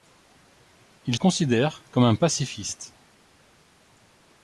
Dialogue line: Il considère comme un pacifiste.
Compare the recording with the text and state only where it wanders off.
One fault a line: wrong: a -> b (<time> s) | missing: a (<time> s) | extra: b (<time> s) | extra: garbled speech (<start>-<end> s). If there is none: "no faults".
no faults